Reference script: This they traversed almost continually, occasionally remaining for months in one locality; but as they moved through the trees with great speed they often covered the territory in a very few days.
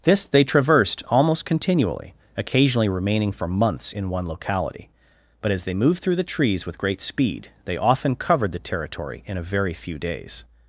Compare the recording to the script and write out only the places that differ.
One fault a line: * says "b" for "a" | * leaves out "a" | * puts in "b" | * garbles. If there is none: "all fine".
all fine